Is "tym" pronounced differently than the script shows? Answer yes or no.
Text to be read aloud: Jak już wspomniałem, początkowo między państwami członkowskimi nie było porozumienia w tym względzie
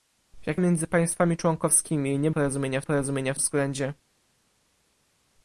yes